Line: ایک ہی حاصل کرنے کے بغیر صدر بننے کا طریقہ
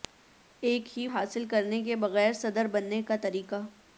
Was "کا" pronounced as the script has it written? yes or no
yes